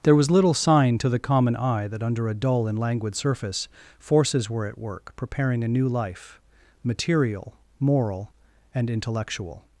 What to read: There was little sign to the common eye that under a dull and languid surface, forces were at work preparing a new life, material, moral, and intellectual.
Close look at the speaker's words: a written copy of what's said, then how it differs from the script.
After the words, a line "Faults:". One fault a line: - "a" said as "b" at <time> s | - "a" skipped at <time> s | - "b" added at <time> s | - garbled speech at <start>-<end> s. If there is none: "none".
There was little sign to the common eye that under a dull and languid surface, forces were at work preparing a new life, material, moral, and intellectual.
Faults:
none